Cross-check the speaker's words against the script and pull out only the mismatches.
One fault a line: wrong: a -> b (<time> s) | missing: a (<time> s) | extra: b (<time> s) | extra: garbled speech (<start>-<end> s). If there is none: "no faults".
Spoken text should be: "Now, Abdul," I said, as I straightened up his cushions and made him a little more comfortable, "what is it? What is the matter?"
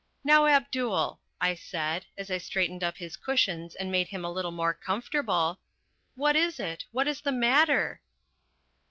no faults